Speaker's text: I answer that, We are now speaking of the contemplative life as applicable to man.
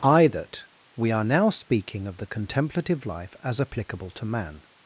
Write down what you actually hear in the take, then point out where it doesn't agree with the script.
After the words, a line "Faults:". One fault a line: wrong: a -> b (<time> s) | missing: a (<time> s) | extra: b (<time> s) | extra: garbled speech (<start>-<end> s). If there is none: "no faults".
I that, We are now speaking of the contemplative life as applicable to man.
Faults:
missing: answer (0.3 s)